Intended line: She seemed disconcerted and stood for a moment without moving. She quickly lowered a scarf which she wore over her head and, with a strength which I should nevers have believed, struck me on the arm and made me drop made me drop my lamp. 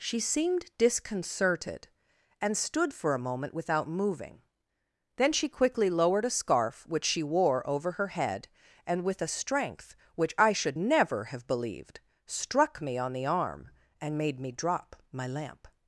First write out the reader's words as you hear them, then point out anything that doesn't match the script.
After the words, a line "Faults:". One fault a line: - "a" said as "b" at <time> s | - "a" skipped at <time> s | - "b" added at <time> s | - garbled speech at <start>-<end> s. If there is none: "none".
She seemed disconcerted and stood for a moment without moving. Then she quickly lowered a scarf which she wore over her head and, with a strength which I should never have believed, struck me on the arm and made me drop my lamp.
Faults:
- "Then" added at 5.2 s
- "nevers" said as "never" at 10.8 s
- "made me drop" skipped at 14.9 s